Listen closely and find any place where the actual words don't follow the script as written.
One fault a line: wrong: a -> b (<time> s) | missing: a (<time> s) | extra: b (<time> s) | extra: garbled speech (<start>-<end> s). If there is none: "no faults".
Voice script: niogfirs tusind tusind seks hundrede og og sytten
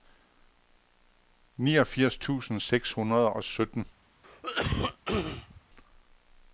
missing: tusind (2.6 s)
missing: og (3.4 s)